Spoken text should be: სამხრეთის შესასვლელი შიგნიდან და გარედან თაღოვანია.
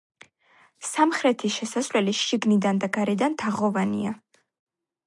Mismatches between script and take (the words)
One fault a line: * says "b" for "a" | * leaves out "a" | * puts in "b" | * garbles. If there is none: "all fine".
all fine